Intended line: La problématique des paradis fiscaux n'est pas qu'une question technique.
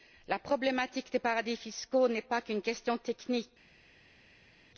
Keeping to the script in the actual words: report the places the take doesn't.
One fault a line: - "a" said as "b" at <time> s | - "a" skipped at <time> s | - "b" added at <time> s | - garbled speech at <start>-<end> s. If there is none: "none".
none